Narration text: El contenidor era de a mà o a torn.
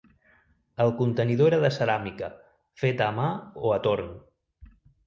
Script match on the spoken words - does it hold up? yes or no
no